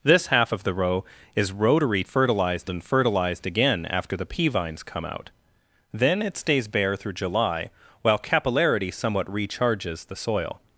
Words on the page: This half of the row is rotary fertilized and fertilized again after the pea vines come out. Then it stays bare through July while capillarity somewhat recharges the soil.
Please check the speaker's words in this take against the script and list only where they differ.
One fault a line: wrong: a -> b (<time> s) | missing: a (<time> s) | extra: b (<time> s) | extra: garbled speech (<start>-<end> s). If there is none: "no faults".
no faults